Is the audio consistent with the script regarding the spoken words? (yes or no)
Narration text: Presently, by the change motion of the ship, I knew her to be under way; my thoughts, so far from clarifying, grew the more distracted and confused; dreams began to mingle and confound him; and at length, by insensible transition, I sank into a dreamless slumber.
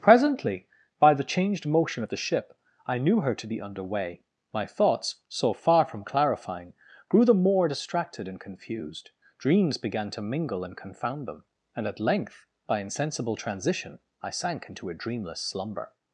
no